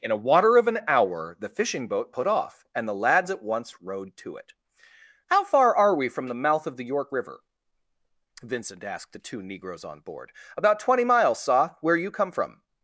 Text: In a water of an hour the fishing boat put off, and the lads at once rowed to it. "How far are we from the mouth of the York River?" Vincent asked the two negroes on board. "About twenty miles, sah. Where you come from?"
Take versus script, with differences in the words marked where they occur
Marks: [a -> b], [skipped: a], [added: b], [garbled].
In a water of an hour the fishing boat put off, and the lads at once rowed to it. "How far are we from the mouth of the York River?" Vincent asked the two negroes on board. "About twenty miles, sah. Where you come from?"